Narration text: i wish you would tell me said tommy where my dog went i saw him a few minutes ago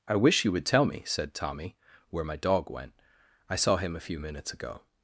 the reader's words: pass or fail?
pass